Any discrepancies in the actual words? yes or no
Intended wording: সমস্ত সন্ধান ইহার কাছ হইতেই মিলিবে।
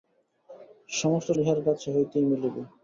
yes